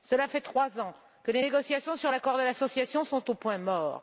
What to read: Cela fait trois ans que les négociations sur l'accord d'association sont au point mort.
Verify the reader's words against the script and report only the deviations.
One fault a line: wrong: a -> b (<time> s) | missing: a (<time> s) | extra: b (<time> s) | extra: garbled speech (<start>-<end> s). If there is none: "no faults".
no faults